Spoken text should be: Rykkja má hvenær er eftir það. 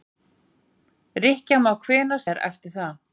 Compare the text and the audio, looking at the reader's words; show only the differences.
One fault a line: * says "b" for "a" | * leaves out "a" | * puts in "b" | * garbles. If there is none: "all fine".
all fine